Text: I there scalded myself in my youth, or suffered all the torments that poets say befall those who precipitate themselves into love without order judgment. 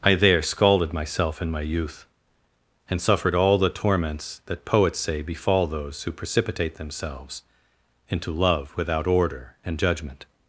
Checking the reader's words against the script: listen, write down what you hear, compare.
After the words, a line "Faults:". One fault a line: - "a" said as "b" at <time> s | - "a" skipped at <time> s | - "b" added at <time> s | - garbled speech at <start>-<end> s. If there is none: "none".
I there scalded myself in my youth, and suffered all the torments that poets say befall those who precipitate themselves into love without order and judgment.
Faults:
- "or" said as "and" at 2.9 s
- "and" added at 9.6 s